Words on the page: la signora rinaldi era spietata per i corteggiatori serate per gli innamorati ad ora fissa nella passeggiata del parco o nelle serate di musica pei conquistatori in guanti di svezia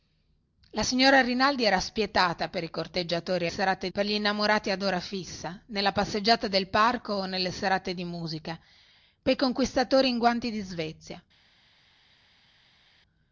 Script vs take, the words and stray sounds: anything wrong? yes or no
no